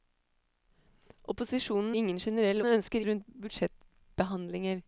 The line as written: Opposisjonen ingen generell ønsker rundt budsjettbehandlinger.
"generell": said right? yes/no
yes